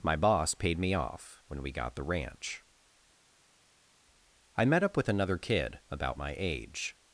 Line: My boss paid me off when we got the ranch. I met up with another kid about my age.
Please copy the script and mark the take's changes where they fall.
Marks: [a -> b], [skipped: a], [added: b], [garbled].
My boss paid me off when we got the ranch. I met up with another kid about my age.